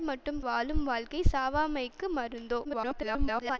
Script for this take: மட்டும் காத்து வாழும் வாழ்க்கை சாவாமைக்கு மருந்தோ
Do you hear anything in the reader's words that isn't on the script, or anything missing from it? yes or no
yes